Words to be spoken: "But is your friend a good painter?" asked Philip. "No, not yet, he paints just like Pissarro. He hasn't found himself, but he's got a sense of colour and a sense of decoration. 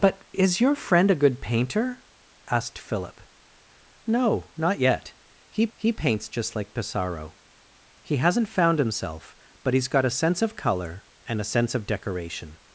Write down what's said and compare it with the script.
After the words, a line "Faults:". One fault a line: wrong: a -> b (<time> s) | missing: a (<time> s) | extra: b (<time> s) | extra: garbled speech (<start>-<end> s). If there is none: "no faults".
"But is your friend a good painter?" asked Philip. "No, not yet, he he paints just like Pissarro. He hasn't found himself, but he's got a sense of colour and a sense of decoration.
Faults:
extra: he (5.7 s)